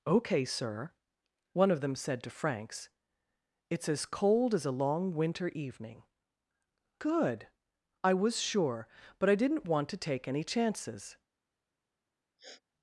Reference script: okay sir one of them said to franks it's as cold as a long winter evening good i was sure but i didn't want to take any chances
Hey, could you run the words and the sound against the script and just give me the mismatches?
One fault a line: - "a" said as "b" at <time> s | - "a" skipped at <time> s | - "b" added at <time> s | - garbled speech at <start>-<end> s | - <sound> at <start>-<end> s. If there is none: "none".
- sniff at 12.4-12.6 s